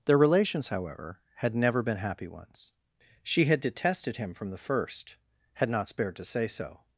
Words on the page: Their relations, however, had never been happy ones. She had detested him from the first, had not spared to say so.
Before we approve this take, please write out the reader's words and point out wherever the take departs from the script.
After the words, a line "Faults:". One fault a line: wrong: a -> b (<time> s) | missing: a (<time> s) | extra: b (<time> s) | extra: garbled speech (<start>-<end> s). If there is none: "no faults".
Their relations, however, had never been happy ones. She had detested him from the first, had not spared to say so.
Faults:
no faults